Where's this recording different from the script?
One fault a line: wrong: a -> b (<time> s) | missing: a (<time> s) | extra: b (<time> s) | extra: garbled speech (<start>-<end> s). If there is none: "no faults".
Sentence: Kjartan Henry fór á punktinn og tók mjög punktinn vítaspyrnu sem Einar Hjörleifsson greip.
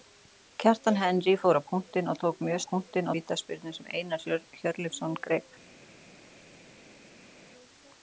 no faults